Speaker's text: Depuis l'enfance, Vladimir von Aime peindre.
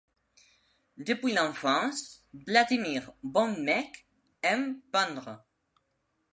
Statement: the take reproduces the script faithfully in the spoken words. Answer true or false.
false